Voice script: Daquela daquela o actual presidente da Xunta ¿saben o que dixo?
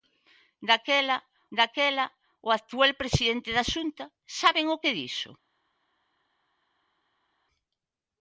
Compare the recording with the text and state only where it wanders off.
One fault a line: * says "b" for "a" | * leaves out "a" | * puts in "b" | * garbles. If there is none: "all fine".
all fine